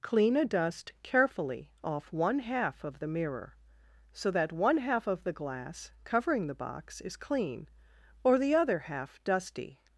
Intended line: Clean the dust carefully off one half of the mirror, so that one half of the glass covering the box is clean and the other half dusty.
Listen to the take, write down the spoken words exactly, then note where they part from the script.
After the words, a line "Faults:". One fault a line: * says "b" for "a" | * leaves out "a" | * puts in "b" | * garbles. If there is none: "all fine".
Clean a dust carefully off one half of the mirror, so that one half of the glass covering the box is clean or the other half dusty.
Faults:
* says "a" for "the"
* says "or" for "and"